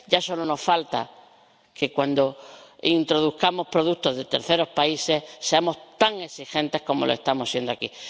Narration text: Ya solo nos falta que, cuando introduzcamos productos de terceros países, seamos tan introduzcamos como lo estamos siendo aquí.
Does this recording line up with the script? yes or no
no